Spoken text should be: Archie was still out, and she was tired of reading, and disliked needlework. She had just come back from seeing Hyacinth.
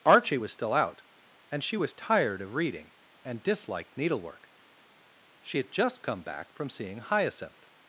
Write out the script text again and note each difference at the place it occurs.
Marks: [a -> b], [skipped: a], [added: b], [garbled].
Archie was still out, and she was tired of reading, and disliked needlework. She had just come back from seeing Hyacinth.